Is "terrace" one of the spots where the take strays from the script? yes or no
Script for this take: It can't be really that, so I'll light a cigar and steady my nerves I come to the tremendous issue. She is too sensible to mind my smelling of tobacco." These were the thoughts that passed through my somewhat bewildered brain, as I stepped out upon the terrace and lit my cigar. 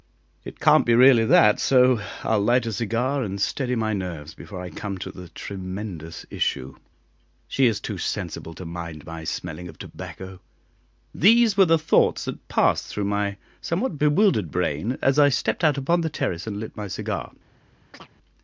no